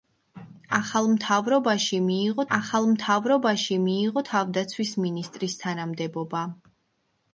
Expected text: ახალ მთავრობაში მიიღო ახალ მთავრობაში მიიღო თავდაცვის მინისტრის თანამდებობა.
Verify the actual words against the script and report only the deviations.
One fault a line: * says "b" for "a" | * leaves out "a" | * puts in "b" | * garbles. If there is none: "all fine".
all fine